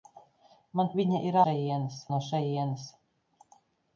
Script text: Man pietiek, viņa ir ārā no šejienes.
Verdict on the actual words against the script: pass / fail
fail